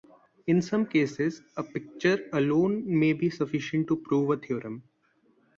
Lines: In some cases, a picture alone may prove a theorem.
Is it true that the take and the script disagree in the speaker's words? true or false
true